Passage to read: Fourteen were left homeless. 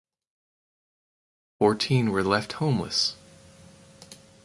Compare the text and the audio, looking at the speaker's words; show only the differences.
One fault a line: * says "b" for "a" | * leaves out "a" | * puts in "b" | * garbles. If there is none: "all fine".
all fine